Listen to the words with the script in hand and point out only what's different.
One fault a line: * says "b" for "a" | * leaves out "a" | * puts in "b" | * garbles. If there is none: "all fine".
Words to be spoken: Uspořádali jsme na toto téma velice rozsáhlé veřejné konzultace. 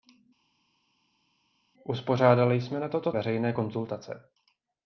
* leaves out "téma velice rozsáhlé"